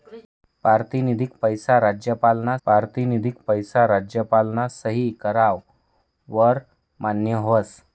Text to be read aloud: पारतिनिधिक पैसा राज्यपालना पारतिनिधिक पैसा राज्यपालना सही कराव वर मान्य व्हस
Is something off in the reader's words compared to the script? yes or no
no